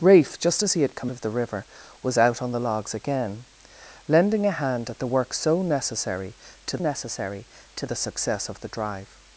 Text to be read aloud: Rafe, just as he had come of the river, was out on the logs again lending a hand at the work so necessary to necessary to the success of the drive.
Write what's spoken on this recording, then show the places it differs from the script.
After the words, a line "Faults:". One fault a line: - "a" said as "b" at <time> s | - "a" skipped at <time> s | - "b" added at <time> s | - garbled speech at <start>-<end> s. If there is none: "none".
Rafe, just as he had come of the river, was out on the logs again lending a hand at the work so necessary to necessary to the success of the drive.
Faults:
none